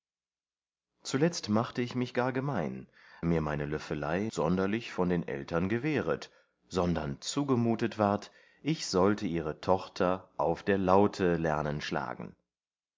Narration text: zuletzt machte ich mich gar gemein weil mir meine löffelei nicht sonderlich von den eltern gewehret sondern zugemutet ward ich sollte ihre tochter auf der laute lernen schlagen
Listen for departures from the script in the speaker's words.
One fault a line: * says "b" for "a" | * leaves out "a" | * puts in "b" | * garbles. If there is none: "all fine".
* leaves out "weil"
* leaves out "nicht"